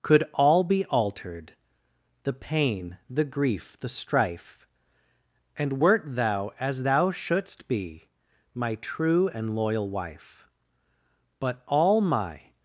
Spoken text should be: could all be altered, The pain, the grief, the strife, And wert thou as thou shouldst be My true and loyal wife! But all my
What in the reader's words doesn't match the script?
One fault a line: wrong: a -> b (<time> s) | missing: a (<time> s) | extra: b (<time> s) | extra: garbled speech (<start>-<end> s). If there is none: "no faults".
no faults